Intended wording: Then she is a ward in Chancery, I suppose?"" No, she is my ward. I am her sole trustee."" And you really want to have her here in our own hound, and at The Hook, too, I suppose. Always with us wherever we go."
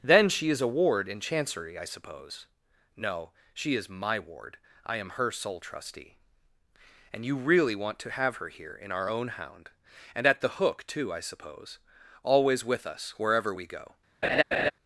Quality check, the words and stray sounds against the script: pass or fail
fail